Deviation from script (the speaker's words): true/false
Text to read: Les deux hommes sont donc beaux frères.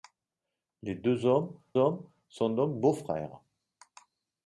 true